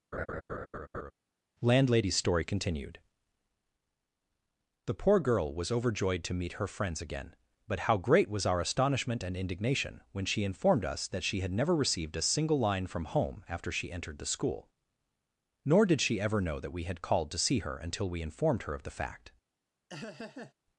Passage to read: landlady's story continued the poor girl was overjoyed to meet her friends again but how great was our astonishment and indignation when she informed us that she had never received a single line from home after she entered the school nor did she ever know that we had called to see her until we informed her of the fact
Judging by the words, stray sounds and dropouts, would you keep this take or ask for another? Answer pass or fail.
fail